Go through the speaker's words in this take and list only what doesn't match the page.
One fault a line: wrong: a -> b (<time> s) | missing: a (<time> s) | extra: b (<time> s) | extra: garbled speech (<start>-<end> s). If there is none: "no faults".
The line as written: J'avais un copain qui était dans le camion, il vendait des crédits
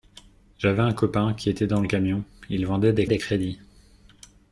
extra: des (3.0 s)